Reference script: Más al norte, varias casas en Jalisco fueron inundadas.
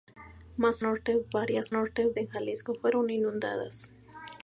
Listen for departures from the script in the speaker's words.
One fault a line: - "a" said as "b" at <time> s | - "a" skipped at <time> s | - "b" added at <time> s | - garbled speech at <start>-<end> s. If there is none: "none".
- "al" skipped at 0.8 s
- "casas" said as "norte" at 1.7 s